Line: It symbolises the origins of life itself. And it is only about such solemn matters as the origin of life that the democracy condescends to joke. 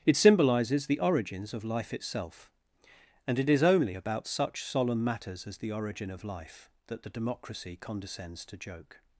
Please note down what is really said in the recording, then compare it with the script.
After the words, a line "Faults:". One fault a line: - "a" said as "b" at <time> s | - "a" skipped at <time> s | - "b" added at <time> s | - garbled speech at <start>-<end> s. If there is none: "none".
It symbolises the origins of life itself. And it is only about such solemn matters as the origin of life that the democracy condescends to joke.
Faults:
none